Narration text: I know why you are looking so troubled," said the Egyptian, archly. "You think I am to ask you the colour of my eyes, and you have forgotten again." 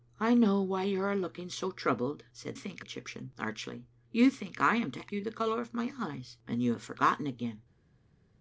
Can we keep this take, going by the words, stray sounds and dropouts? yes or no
no